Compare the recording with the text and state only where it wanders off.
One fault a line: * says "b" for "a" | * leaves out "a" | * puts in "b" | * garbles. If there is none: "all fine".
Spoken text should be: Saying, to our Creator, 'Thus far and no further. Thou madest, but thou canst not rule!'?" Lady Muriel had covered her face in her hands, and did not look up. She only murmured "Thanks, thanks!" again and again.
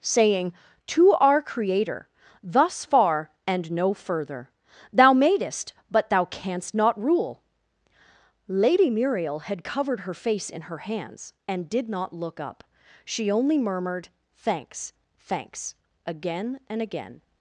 all fine